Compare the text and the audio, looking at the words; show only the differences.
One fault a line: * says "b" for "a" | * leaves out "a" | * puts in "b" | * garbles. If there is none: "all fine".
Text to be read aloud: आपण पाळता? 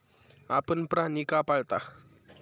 * puts in "प्राणी का"